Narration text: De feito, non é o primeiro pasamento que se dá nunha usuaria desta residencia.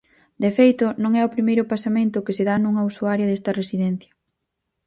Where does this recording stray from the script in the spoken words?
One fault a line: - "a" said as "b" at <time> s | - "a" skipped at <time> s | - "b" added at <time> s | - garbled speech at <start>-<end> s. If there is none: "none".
none